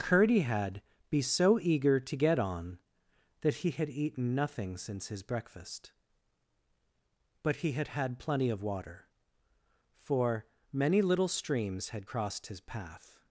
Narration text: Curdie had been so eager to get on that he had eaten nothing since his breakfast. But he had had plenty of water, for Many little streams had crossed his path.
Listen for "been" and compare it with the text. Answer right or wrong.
wrong